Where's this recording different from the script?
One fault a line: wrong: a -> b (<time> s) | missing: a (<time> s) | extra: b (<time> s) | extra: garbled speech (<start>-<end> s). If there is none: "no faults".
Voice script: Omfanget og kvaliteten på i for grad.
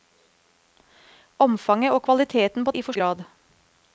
no faults